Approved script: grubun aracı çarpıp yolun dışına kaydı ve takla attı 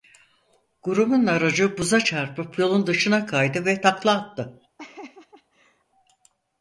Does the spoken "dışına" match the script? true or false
true